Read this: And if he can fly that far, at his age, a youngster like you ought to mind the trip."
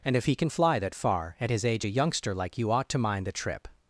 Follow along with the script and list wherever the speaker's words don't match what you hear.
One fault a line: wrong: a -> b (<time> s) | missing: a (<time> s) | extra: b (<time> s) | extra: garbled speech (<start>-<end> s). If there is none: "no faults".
no faults